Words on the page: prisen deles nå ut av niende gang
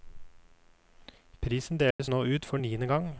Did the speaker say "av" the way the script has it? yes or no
no